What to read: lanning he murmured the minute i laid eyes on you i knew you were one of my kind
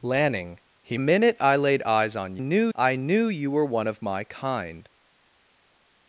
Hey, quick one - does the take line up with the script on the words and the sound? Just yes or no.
no